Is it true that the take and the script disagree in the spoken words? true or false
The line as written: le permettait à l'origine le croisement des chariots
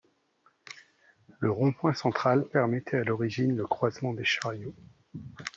true